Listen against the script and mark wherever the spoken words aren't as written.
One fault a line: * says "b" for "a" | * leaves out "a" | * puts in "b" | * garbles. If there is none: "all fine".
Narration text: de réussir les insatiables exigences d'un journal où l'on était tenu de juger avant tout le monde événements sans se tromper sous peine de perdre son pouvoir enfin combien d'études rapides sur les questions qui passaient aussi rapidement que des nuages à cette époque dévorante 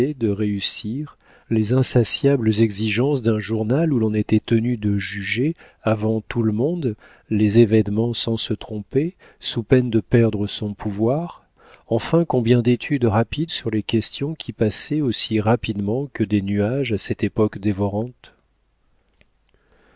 * puts in "les"